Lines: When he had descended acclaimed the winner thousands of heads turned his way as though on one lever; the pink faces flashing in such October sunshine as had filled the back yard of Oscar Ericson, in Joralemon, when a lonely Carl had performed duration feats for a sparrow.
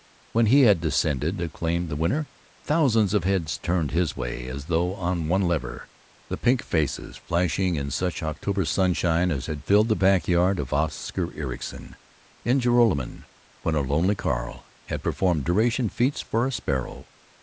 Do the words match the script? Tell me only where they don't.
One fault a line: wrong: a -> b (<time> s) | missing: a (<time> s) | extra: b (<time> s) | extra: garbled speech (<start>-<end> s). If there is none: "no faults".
no faults